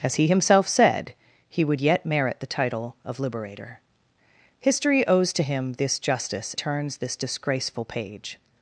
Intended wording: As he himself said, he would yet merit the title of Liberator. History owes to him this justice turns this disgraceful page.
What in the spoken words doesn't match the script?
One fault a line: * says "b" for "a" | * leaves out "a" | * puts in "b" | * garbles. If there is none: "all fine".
all fine